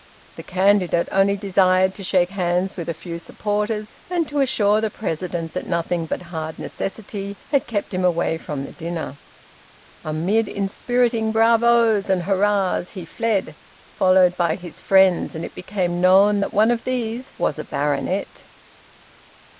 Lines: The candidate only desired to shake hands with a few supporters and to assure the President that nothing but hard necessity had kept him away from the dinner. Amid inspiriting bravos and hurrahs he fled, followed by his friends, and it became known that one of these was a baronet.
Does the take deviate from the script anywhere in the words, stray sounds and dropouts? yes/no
no